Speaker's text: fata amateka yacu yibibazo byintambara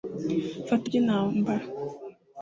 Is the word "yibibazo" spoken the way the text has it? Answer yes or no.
no